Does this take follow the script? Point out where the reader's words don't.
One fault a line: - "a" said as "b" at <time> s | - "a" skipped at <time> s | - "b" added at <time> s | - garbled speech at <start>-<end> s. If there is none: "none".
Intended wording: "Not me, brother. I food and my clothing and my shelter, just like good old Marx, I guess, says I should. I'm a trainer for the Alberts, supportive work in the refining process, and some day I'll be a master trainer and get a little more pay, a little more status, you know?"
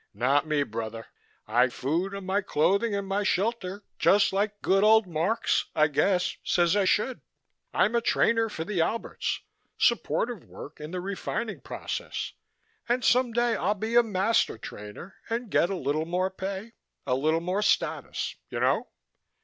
none